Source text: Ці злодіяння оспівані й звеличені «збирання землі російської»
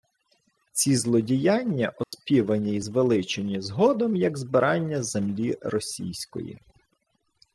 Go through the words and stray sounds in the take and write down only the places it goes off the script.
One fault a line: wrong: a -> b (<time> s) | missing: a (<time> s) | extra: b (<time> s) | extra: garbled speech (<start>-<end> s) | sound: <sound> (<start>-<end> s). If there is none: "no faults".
sound: dropout (2.0-2.1 s)
extra: згодом як (3.6 s)